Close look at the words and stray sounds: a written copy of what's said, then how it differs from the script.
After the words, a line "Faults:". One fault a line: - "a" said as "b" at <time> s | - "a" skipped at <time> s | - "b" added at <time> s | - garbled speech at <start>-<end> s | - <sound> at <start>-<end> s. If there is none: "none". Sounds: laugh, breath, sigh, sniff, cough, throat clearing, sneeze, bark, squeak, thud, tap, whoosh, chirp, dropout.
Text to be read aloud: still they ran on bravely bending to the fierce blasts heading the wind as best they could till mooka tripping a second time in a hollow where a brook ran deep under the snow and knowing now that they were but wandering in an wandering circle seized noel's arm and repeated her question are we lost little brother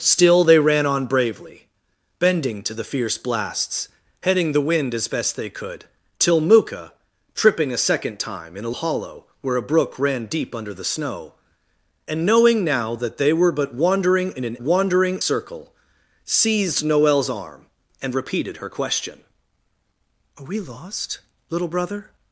still they ran on bravely bending to the fierce blasts heading the wind as best they could till mooka tripping a second time in a hollow where a brook ran deep under the snow and knowing now that they were but wandering in an wandering circle seized noel's arm and repeated her question are we lost little brother
Faults:
none